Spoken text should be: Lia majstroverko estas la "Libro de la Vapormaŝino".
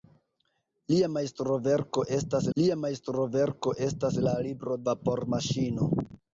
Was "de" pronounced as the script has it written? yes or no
no